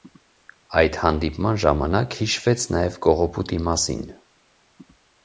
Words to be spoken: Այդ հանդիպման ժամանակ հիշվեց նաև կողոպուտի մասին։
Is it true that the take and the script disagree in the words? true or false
false